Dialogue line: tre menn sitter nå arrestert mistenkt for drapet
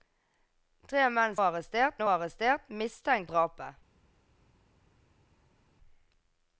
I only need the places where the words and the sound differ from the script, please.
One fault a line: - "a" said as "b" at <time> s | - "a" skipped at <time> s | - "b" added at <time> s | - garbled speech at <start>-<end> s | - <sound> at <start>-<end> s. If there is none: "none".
- "sitter" said as "arrestert" at 1.4 s
- "for" skipped at 3.3 s